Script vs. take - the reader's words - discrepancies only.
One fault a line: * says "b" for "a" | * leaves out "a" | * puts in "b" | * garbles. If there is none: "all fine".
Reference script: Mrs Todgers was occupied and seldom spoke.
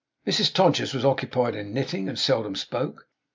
* puts in "in knitting"